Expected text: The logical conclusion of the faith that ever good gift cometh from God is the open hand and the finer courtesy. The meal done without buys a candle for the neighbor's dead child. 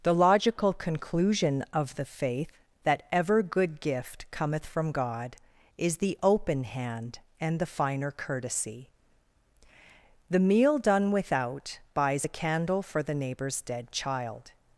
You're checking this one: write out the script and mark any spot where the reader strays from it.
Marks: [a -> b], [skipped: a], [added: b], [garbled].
The logical conclusion of the faith that ever good gift cometh from God is the open hand and the finer courtesy. The meal done without buys a candle for the neighbor's dead child.